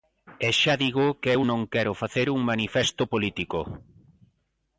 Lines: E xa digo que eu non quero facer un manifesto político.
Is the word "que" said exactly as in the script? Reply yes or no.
yes